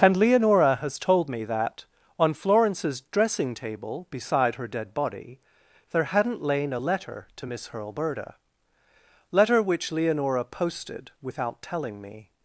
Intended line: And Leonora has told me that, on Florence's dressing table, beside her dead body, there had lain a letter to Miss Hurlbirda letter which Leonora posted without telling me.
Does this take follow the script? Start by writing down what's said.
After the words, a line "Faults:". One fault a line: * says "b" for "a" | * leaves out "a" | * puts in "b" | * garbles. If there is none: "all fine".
And Leonora has told me that, on Florence's dressing table, beside her dead body, there hadn't lain a letter to Miss Hurlbirda letter which Leonora posted without telling me.
Faults:
* says "hadn't" for "had"